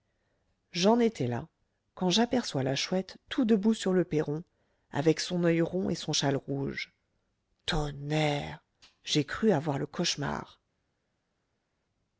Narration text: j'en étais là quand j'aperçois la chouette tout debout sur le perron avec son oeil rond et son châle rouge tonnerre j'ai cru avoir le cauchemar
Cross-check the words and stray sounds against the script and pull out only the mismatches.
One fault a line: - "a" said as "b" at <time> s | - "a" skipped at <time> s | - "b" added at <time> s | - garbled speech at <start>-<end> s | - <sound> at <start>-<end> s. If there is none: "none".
none